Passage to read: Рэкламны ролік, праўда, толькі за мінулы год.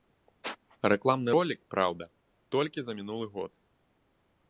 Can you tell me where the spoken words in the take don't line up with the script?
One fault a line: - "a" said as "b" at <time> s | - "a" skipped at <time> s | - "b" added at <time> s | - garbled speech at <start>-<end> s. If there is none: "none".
none